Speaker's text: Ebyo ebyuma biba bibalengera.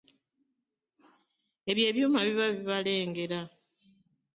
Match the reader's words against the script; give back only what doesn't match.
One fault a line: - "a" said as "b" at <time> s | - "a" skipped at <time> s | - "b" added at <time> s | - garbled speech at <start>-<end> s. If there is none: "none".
none